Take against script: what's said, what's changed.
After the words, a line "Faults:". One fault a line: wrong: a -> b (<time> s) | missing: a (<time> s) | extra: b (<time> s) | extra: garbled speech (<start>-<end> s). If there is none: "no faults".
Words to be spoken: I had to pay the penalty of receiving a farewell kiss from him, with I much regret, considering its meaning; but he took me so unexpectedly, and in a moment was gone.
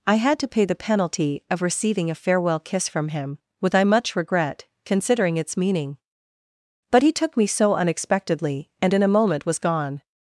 I had to pay the penalty of receiving a farewell kiss from him, with I much regret, considering its meaning; but he took me so unexpectedly, and in a moment was gone.
Faults:
no faults